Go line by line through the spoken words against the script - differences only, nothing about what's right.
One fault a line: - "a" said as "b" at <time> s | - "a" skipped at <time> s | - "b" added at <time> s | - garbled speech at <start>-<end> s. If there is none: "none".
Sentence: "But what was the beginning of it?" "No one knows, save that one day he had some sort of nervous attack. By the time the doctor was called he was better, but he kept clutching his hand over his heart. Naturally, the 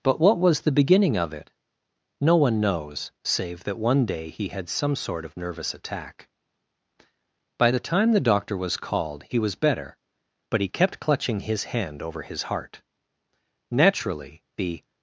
none